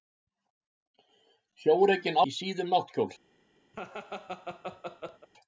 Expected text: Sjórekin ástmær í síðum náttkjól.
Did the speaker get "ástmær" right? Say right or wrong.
wrong